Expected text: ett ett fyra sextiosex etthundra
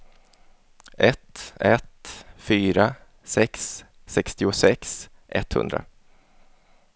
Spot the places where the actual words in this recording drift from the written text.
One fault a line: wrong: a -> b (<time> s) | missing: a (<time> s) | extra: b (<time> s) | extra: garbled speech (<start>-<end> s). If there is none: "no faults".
extra: sex (3.2 s)